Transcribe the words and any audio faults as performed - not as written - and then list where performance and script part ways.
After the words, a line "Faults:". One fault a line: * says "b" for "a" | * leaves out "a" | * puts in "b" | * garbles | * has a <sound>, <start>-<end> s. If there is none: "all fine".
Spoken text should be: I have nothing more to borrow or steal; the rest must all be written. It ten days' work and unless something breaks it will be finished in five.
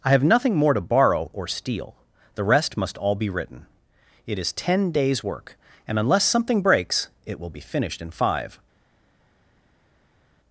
I have nothing more to borrow or steal; the rest must all be written. It is ten days' work and unless something breaks it will be finished in five.
Faults:
* puts in "is"